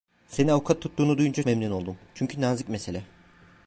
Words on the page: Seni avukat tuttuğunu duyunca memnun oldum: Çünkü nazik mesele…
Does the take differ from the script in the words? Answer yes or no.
no